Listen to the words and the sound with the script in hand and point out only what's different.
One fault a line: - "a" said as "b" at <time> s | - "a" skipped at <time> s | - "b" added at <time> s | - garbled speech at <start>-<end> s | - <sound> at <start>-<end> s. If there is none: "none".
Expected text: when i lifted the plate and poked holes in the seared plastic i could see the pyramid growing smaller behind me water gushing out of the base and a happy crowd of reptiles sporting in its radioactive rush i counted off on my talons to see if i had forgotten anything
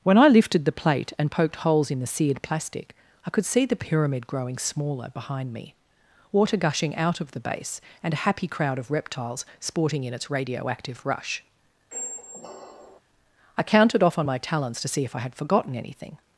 - squeak at 11.9-13.0 s